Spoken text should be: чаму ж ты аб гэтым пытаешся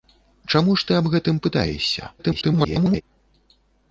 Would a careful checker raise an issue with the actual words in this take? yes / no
yes